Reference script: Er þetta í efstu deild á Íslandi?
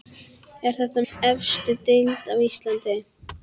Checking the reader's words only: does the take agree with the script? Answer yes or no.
yes